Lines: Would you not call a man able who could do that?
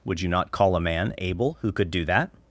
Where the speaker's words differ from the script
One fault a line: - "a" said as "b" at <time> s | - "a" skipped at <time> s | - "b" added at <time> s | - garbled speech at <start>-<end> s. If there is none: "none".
none